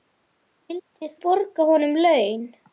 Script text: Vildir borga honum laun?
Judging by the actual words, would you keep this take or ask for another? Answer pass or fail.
pass